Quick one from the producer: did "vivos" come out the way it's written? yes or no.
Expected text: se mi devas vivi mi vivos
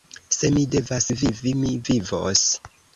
yes